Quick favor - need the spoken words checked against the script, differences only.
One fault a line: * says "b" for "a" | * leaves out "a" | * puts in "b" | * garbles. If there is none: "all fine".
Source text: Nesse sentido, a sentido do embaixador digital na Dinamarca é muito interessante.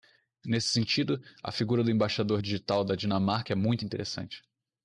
* says "figura" for "sentido"
* says "da" for "na"